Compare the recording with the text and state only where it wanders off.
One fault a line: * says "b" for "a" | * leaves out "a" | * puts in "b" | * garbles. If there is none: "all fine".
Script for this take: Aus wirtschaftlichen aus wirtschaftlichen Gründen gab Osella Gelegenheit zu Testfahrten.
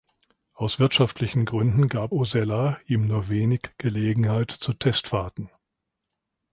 * leaves out "aus wirtschaftlichen"
* puts in "ihm nur wenig"